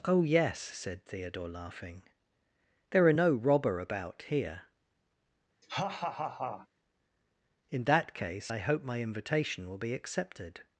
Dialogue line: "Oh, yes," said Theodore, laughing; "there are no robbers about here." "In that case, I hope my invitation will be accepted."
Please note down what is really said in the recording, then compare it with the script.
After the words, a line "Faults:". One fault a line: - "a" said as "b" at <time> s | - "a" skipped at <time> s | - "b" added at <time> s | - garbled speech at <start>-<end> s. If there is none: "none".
"Oh, yes," said Theodore, laughing; "there are no robber about here." "In that case, I hope my invitation will be accepted."
Faults:
- "robbers" said as "robber" at 3.3 s